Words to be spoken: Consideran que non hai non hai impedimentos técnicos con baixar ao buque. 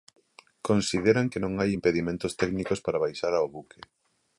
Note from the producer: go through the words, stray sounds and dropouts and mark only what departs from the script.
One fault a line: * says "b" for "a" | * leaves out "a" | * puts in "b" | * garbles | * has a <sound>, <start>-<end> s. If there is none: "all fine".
* leaves out "non hai"
* says "para" for "con"